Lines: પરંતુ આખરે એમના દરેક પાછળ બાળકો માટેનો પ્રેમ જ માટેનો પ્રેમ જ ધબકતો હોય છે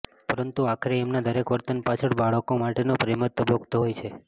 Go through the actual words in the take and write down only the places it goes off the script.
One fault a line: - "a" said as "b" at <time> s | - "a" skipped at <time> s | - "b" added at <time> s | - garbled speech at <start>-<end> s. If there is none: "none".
- "વર્તન" added at 1.5 s
- "માટેનો પ્રેમ જ" skipped at 3.5 s